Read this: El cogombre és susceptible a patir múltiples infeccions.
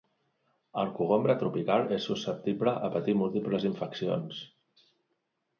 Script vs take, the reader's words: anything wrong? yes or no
yes